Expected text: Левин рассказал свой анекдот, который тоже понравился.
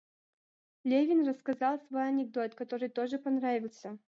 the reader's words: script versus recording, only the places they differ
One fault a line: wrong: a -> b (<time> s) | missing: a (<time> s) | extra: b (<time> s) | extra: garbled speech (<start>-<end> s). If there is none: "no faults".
no faults